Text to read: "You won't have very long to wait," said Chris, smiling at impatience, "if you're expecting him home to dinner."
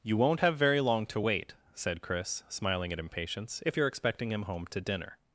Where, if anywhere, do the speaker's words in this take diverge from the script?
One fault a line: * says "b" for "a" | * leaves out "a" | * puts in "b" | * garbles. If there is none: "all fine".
all fine